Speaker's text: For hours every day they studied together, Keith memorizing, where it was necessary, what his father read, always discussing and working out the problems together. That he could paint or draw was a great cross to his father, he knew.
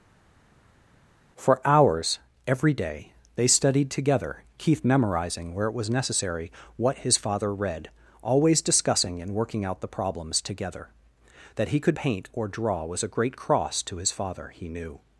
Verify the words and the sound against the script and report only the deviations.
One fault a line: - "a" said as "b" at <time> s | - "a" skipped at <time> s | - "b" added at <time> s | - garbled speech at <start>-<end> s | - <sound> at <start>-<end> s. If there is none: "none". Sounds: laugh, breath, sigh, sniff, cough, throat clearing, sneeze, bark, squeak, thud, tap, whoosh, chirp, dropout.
none